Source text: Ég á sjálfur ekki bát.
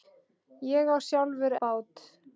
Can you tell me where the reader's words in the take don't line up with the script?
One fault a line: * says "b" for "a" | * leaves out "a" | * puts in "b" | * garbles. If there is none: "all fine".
* leaves out "ekki"